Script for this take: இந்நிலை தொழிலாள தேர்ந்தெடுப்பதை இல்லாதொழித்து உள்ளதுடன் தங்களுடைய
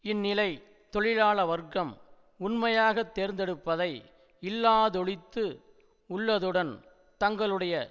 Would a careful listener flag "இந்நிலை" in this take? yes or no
no